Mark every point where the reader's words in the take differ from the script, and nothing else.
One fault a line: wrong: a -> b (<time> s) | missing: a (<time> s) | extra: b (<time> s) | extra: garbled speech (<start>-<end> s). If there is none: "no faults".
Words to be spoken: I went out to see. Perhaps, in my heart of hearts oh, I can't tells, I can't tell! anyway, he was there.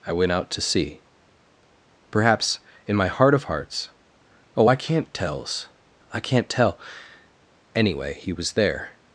no faults